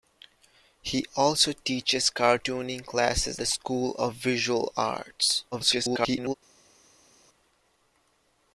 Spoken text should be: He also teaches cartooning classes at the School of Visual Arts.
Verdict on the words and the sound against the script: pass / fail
fail